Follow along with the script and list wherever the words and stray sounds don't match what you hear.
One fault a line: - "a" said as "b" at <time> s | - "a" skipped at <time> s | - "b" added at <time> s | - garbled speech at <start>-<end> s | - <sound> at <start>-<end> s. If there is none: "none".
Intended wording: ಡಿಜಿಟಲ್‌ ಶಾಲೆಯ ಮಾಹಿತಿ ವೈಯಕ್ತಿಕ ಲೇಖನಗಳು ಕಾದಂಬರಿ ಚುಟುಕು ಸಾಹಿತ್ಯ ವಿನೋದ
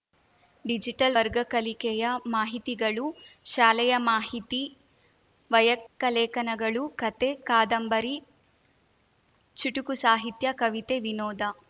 - "ವರ್ಗ ಕಲಿಕೆಯ ಮಾಹಿತಿಗಳು" added at 1.1 s
- dropout at 5.9-6.0 s
- "ಕಥೆ" added at 7.0 s
- "ಕವಿತೆ" added at 10.5 s